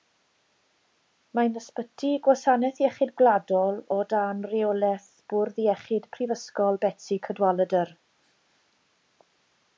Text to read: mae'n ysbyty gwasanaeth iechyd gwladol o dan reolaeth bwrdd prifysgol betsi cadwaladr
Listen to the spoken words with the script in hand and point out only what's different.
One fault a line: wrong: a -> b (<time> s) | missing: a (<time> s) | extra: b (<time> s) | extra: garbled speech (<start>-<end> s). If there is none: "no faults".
extra: iechyd (5.7 s)